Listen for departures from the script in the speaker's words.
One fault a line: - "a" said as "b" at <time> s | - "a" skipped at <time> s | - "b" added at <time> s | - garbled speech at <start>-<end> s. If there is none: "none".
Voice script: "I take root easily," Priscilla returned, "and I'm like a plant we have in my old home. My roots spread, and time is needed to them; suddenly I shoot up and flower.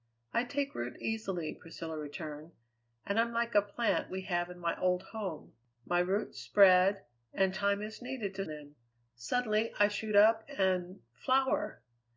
none